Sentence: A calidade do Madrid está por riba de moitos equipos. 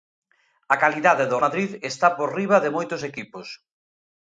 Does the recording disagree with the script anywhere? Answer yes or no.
no